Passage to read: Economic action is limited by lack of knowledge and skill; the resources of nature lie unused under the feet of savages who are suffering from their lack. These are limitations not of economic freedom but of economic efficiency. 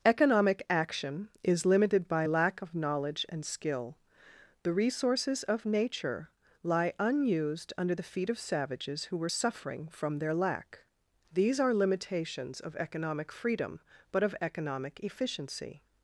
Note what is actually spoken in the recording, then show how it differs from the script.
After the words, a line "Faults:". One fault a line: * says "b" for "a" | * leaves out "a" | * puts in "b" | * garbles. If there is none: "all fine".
Economic action is limited by lack of knowledge and skill; the resources of nature lie unused under the feet of savages who were suffering from their lack. These are limitations of economic freedom but of economic efficiency.
Faults:
* says "were" for "are"
* leaves out "not"